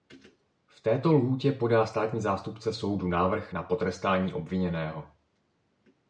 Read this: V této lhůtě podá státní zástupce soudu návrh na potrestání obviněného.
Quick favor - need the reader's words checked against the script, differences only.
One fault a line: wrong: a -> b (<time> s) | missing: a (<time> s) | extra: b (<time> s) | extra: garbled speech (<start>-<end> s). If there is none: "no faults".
no faults